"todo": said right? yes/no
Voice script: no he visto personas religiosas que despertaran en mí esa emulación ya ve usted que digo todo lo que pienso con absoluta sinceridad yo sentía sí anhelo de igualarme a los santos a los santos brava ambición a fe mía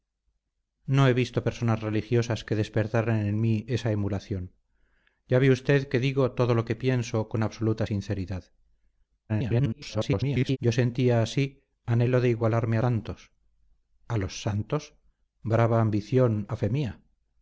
yes